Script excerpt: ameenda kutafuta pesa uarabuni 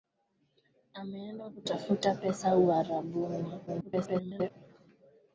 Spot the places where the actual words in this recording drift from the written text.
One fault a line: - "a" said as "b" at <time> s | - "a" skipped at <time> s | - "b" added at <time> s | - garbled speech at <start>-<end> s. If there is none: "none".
- garbled speech at 3.7-4.5 s